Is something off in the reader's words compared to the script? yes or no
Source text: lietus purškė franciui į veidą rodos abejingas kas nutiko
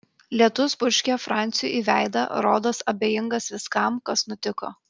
yes